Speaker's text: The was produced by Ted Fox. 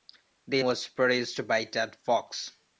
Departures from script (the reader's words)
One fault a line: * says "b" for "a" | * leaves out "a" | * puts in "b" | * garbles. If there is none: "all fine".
all fine